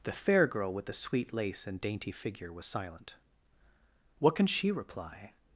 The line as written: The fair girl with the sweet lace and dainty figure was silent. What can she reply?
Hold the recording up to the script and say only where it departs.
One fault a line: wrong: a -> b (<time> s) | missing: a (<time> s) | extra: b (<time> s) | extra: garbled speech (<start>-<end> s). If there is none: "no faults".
no faults